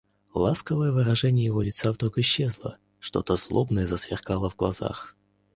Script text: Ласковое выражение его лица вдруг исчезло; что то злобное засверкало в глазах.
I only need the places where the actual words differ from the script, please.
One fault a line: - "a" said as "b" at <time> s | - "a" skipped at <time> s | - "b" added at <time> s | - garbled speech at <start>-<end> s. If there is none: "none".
none